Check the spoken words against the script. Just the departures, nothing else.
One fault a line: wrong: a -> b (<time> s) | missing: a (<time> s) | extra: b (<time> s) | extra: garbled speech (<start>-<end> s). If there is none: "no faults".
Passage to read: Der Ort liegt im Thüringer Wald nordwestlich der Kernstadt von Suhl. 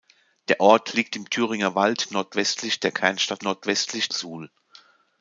wrong: von -> nordwestlich (3.4 s)